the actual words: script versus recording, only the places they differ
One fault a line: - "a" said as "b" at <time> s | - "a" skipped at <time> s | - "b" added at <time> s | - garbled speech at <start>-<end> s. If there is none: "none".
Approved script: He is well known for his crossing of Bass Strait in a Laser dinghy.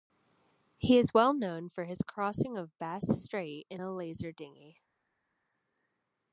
none